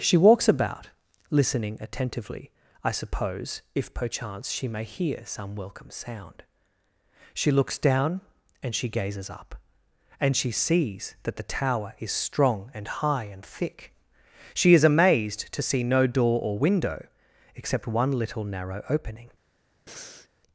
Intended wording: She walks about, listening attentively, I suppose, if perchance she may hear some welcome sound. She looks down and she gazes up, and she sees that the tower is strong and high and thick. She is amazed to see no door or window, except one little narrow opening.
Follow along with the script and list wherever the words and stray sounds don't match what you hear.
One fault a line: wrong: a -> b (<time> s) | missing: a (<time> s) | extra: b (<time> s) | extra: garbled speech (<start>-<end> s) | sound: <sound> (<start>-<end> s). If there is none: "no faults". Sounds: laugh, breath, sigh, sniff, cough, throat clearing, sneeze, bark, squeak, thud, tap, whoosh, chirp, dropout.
sound: breath (19.9-20.3 s)